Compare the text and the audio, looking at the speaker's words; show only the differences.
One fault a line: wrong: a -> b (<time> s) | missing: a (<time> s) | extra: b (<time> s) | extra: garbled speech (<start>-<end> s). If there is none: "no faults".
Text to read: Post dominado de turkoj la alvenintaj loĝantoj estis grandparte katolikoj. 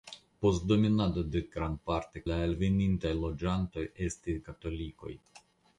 wrong: turkoj -> grandparte (1.6 s)
missing: grandparte (4.4 s)